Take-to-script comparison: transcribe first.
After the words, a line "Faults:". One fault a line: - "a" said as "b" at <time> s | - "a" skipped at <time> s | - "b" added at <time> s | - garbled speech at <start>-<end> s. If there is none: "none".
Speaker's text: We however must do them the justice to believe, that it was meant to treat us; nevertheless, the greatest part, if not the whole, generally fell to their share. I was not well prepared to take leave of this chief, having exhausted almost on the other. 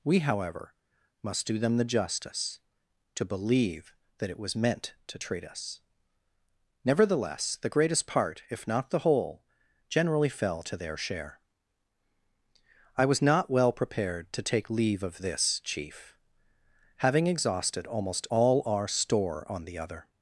We however must do them the justice to believe, that it was meant to treat us; nevertheless, the greatest part, if not the whole, generally fell to their share. I was not well prepared to take leave of this chief, having exhausted almost all our store on the other.
Faults:
- "all our store" added at 18.3 s